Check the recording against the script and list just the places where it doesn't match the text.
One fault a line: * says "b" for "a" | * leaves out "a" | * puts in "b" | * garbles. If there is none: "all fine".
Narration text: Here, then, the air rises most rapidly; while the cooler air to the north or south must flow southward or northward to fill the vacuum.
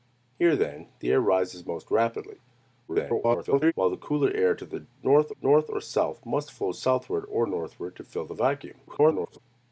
* garbles
* puts in "north"
* garbles